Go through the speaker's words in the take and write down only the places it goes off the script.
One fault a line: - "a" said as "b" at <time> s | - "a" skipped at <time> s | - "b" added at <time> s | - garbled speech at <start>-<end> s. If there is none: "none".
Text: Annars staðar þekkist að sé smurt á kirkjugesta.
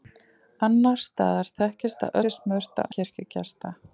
none